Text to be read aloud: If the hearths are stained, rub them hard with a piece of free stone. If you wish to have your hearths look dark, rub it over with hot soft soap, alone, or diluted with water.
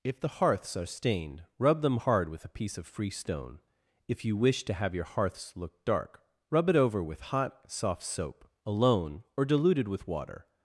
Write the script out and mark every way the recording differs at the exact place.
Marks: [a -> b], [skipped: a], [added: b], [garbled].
If the hearths are stained, rub them hard with a piece of free stone. If you wish to have your hearths look dark, rub it over with hot soft soap, alone, or diluted with water.